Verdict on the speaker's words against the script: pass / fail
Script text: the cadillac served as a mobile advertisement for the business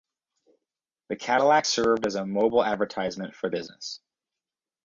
fail